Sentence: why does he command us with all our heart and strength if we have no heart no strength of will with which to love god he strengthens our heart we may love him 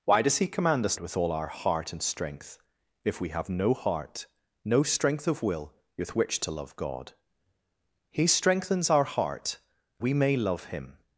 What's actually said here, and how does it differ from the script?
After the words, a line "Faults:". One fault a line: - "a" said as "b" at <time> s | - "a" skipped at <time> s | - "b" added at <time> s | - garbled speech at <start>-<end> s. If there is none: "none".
why does he command us with all our heart and strength if we have no heart no strength of will with which to love god he strengthens our heart we may love him
Faults:
none